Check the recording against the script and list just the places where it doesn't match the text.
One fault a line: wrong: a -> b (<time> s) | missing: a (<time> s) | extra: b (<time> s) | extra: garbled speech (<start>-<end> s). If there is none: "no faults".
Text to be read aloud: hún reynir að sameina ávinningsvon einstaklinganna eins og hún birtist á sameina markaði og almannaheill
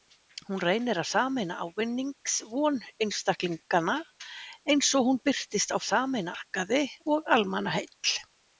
no faults